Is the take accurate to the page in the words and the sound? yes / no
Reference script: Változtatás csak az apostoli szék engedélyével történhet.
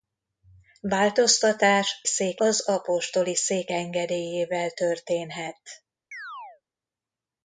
no